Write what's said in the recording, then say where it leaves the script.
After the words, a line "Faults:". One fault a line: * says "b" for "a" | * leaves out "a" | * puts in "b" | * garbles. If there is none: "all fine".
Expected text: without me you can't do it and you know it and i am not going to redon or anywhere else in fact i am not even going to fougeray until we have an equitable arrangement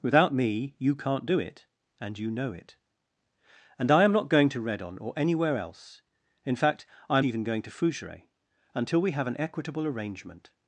without me you can't do it and you know it and i am not going to redon or anywhere else in fact i am even going to fougeray until we have an equitable arrangement
Faults:
* leaves out "not"